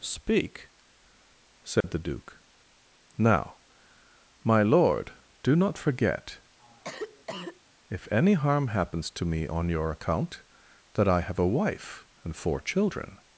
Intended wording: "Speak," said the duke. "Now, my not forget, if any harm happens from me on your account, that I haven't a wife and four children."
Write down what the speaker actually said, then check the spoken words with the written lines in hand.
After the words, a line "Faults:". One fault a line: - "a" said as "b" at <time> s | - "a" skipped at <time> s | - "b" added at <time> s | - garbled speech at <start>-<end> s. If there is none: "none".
"Speak," said the duke. "Now, my lord, do not forget, if any harm happens to me on your account, that I have a wife and four children."
Faults:
- "lord do" added at 4.6 s
- "from" said as "to" at 9.1 s
- "haven't" said as "have" at 11.2 s